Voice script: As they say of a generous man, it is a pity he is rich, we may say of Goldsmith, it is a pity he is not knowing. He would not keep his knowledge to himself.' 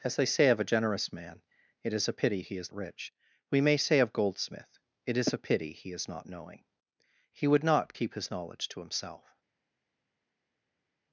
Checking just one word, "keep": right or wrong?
right